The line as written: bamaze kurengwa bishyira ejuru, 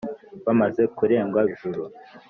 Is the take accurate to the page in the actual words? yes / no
no